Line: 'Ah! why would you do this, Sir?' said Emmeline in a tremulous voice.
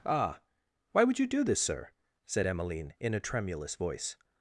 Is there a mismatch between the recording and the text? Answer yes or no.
no